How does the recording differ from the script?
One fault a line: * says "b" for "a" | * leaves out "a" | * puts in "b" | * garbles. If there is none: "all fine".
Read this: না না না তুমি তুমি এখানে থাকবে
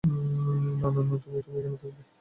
all fine